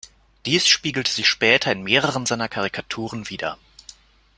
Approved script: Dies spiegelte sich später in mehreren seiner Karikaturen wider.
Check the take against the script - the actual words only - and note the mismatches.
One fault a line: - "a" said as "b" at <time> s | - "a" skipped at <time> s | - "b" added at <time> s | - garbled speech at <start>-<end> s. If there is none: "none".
none